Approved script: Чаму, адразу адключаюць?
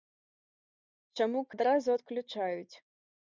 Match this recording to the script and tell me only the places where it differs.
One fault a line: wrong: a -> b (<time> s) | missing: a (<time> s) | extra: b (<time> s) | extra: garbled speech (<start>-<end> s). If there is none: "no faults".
no faults